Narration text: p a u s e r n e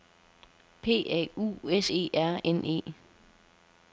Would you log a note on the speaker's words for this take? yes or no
no